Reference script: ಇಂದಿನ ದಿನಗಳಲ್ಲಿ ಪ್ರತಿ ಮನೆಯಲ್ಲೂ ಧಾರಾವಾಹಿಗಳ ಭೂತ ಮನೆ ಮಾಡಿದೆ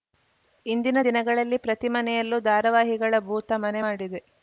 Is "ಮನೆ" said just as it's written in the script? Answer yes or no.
yes